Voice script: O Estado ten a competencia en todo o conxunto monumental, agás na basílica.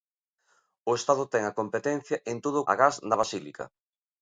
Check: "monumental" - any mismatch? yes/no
yes